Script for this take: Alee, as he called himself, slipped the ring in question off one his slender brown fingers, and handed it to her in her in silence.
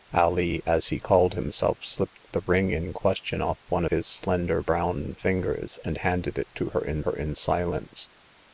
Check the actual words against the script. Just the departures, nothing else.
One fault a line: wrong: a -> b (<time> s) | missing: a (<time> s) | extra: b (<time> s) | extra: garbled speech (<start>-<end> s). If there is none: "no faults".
no faults